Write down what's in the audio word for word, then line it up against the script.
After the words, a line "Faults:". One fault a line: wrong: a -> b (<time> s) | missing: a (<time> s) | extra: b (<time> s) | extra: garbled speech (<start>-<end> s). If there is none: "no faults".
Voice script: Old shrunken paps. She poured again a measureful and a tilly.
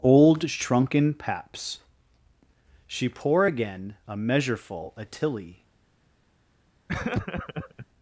Old shrunken paps. She pour again a measureful a tilly.
Faults:
wrong: poured -> pour (3.1 s)
missing: and (4.9 s)